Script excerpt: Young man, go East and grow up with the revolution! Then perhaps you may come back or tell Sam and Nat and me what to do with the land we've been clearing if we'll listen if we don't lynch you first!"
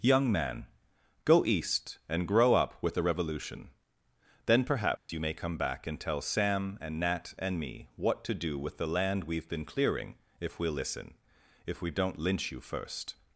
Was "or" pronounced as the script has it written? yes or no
no